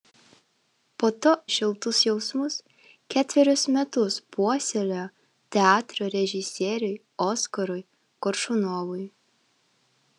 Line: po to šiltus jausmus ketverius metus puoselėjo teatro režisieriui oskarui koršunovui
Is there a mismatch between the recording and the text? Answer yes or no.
no